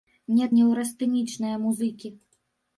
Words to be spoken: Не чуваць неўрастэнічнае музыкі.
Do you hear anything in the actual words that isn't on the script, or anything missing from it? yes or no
yes